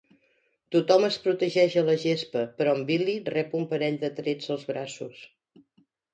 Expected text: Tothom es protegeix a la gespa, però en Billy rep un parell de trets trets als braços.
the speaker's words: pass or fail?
fail